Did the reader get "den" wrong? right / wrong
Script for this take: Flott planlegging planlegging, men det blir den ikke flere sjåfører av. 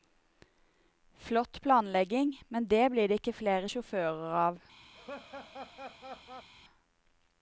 wrong